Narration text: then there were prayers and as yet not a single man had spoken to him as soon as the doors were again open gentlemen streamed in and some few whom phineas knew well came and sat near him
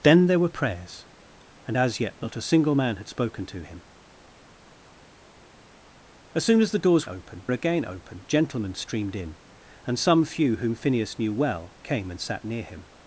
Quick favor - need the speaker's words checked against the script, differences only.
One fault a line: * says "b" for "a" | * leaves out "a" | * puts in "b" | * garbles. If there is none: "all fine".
* says "open" for "were"